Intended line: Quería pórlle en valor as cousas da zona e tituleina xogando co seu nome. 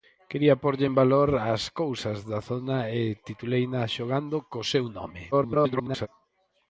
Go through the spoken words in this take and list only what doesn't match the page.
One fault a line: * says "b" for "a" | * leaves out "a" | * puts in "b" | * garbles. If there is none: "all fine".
* garbles